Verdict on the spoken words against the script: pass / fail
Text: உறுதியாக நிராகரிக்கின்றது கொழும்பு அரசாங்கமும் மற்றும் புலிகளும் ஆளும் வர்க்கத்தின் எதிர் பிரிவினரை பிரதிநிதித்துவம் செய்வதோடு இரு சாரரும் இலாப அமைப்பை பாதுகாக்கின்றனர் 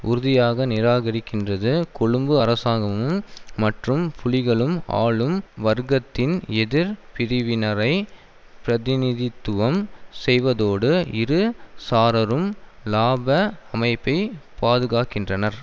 pass